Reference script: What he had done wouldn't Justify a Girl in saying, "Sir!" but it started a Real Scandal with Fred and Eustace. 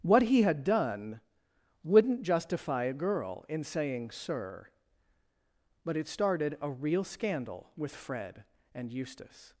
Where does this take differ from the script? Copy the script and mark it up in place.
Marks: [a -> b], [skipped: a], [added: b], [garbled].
What he had done wouldn't Justify a Girl in saying, "Sir!" but it started a Real Scandal with Fred and Eustace.